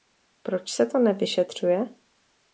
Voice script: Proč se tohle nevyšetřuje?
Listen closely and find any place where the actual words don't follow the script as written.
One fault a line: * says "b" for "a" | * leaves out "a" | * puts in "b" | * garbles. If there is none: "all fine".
* says "to" for "tohle"